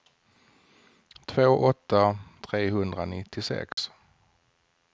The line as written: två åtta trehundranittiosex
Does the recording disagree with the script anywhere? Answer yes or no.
no